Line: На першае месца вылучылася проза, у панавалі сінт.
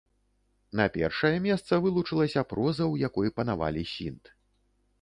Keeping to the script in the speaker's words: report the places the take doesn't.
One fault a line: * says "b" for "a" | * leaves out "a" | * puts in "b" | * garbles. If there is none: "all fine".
* puts in "якой"